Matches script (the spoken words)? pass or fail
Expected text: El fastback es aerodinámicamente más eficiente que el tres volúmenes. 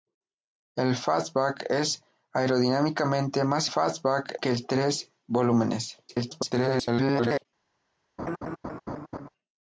fail